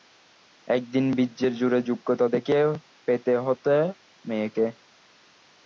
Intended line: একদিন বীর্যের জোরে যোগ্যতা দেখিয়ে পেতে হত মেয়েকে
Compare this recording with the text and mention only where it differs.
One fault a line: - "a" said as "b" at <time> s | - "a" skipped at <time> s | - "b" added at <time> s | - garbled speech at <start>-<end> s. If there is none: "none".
none